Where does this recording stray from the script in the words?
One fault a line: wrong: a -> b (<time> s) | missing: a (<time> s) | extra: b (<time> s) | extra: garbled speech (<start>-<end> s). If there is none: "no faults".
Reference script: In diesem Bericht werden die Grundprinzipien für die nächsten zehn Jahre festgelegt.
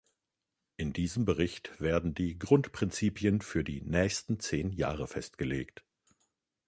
no faults